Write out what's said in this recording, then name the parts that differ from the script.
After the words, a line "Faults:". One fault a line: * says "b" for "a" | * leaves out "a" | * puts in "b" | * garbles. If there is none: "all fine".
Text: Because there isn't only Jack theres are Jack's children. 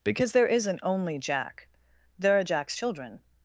Because there isn't only Jack there are Jack's children.
Faults:
* says "there" for "theres"